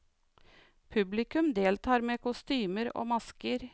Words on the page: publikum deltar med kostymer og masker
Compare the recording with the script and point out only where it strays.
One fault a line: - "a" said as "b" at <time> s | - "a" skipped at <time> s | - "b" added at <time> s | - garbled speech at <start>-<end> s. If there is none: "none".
none